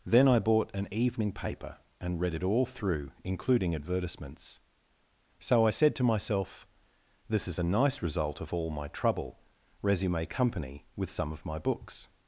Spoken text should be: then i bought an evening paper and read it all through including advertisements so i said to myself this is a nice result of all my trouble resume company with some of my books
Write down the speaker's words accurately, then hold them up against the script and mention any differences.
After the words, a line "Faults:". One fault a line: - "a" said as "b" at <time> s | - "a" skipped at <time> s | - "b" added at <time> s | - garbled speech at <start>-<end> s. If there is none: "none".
then i bought an evening paper and read it all through including advertisements so i said to myself this is a nice result of all my trouble resume company with some of my books
Faults:
none